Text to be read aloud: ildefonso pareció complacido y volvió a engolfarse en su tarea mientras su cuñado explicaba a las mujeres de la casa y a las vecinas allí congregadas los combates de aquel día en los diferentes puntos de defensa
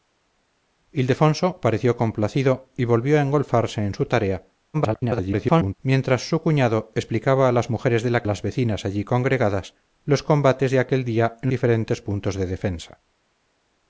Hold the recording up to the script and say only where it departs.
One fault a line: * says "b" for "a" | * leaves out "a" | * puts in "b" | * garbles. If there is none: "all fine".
* garbles
* leaves out "casa y"
* leaves out "los"